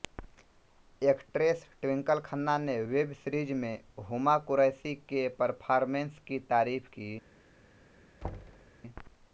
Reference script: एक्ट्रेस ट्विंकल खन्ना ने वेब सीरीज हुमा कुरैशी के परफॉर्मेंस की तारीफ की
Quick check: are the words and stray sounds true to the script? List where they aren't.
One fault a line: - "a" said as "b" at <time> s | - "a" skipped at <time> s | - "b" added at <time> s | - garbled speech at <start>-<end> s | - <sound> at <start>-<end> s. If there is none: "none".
- "में" added at 3.6 s
- thud at 8.2-8.7 s